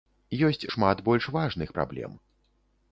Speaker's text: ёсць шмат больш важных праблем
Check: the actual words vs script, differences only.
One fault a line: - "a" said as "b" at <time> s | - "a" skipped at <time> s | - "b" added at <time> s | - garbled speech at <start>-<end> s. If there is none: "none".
none